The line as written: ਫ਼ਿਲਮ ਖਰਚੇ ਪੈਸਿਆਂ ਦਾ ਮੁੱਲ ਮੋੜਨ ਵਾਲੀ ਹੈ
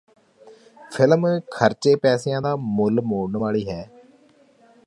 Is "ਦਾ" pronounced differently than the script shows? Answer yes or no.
no